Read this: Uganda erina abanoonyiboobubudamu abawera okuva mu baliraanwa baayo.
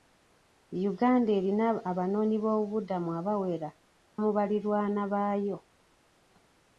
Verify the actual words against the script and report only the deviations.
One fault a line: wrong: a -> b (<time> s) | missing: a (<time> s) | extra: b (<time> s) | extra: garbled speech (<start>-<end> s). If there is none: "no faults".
missing: okuva (3.7 s)